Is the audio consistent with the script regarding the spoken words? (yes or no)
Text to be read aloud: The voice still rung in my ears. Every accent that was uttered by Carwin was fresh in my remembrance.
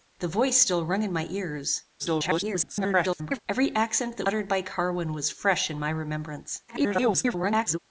no